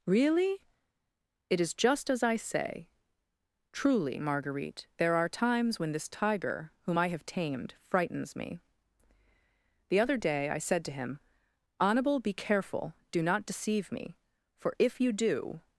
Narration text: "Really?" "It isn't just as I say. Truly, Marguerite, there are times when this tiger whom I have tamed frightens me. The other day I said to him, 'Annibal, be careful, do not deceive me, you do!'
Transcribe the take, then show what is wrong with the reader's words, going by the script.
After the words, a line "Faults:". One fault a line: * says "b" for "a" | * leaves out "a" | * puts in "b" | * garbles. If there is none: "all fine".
"Really?" "It is just as I say. Truly, Marguerite, there are times when this tiger whom I have tamed frightens me. The other day I said to him, 'Annibal, be careful, do not deceive me, for if you do!'
Faults:
* says "is" for "isn't"
* puts in "for if"